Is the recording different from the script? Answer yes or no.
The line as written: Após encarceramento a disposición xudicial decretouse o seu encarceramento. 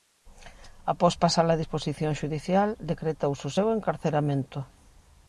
yes